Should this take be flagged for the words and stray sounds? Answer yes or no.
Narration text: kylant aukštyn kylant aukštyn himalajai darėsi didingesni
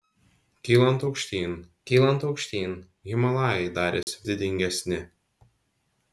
yes